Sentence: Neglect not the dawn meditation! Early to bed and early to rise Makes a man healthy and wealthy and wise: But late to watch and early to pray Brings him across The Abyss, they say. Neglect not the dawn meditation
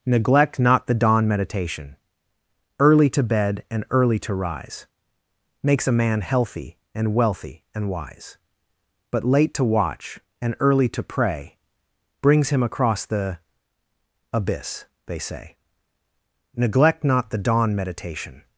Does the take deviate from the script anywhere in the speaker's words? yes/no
no